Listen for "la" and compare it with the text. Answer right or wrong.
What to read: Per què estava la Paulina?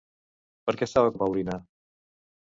right